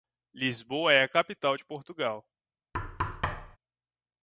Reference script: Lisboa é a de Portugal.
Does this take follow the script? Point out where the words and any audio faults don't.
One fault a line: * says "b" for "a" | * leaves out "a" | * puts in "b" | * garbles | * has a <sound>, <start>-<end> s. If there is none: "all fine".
* puts in "capital"
* has a thud, 2.7-3.6 s